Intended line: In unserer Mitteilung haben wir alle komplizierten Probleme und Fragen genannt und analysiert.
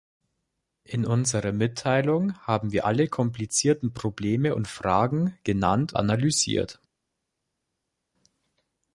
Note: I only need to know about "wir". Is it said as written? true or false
true